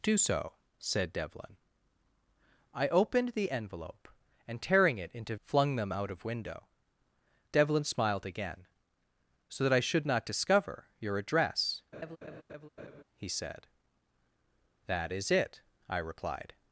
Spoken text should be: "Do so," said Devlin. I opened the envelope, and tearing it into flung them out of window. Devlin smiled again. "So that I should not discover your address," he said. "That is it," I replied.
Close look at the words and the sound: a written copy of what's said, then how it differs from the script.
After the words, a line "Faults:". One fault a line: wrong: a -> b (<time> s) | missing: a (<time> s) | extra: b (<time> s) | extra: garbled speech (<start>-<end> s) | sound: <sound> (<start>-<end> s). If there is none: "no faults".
"Do so," said Devlin. I opened the envelope, and tearing it into flung them out of window. Devlin smiled again. "So that I should not discover your address," he said. "That is it," I replied.
Faults:
sound: laugh (11.9-13.0 s)